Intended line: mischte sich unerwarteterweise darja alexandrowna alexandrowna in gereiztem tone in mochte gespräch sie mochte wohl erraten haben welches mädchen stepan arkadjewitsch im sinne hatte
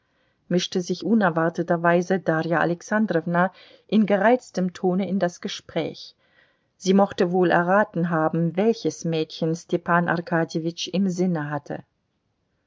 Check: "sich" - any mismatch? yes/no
no